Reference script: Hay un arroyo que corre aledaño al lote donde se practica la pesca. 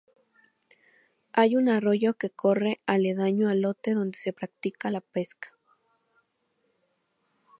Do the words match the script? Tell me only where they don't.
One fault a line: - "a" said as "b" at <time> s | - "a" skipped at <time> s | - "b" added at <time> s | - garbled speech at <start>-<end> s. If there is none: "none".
none